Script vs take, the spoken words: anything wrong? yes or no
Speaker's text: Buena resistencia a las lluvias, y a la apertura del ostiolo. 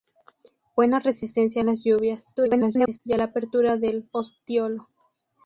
yes